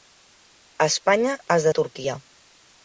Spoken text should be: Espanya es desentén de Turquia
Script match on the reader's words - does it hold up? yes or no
no